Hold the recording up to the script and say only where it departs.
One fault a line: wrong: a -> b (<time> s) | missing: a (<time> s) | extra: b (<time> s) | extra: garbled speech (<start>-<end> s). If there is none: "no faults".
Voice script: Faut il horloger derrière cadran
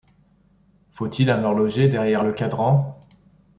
extra: un (1.3 s)
extra: le (2.2 s)